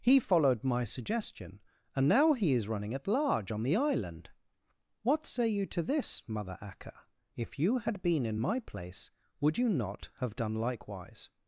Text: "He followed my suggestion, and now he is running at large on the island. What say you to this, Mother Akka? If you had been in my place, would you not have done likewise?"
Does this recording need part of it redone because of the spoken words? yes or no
no